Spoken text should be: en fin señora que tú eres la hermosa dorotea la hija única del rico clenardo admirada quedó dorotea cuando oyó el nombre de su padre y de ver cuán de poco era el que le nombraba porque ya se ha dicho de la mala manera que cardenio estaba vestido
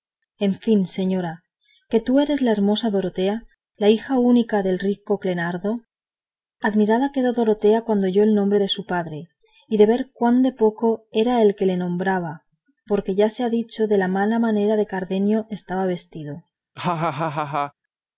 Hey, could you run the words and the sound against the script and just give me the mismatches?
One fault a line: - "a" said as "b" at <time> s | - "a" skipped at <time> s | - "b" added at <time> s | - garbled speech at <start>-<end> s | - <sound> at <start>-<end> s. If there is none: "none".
- laugh at 16.8-17.7 s